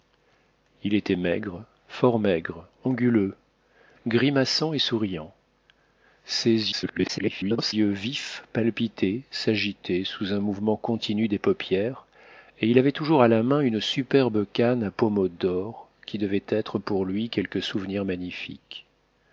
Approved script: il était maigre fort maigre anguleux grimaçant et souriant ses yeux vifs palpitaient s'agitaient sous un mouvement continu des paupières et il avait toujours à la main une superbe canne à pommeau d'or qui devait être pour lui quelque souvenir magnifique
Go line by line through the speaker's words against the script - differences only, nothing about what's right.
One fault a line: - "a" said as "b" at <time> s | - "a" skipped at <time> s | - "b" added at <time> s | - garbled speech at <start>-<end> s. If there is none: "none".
- garbled speech at 6.7-7.7 s